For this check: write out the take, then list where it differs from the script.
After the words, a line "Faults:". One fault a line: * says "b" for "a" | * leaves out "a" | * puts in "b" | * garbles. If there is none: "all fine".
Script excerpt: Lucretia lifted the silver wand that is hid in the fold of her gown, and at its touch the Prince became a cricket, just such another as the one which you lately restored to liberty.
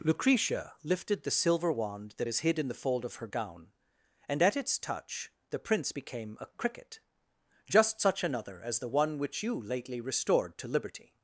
Lucretia lifted the silver wand that is hid in the fold of her gown, and at its touch the Prince became a cricket, just such another as the one which you lately restored to liberty.
Faults:
all fine